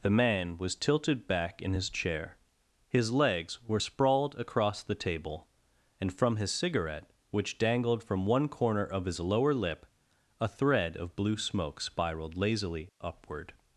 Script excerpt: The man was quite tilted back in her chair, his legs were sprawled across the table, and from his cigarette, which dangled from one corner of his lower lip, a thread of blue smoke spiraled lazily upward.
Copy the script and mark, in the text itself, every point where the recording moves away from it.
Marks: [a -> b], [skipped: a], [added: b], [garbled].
The man was [skipped: quite] tilted back in [her -> his] chair, his legs were sprawled across the table, and from his cigarette, which dangled from one corner of his lower lip, a thread of blue smoke spiraled lazily upward.